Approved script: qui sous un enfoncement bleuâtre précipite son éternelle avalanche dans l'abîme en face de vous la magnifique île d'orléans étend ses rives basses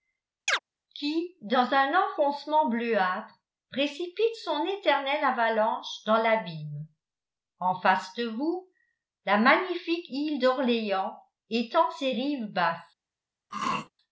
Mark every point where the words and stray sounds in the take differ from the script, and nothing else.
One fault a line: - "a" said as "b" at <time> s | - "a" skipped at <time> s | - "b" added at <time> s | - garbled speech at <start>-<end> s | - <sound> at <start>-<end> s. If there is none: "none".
- chirp at 0.5-0.6 s
- "sous" said as "dans" at 1.4 s
- throat clearing at 13.5-13.9 s